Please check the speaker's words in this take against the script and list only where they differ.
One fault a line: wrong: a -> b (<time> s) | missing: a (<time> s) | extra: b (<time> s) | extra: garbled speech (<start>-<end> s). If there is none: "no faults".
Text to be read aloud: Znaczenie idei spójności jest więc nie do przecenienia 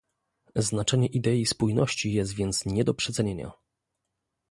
no faults